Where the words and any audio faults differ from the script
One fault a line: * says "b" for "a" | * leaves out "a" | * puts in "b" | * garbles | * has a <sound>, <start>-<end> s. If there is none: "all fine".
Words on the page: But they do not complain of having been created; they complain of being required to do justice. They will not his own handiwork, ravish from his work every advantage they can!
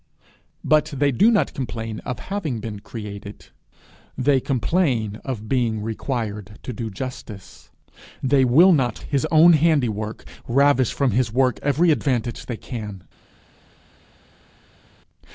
all fine